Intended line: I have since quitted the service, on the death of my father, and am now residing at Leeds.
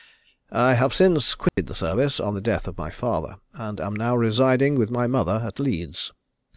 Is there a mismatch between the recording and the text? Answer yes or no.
yes